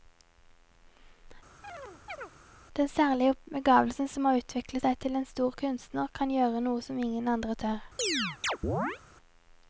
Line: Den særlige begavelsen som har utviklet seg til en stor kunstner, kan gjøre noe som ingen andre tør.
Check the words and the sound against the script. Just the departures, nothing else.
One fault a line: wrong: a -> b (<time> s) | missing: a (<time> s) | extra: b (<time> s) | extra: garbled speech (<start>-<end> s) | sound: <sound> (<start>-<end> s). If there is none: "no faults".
sound: chirp (1.6-2.3 s)
sound: chirp (8.0-9.0 s)